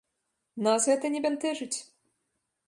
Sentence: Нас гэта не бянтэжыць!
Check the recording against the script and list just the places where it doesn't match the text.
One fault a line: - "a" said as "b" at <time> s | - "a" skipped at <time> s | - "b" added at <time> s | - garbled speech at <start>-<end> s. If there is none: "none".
none